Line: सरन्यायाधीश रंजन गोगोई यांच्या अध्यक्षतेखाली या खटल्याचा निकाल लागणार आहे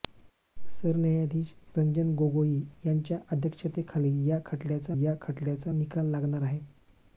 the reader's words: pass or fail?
fail